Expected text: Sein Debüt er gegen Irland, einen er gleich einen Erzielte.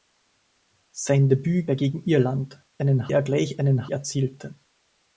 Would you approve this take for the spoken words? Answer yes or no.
yes